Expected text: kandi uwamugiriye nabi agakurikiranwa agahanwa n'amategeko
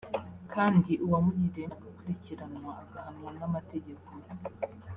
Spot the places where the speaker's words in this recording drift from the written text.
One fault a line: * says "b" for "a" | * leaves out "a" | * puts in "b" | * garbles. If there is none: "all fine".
* leaves out "nabi"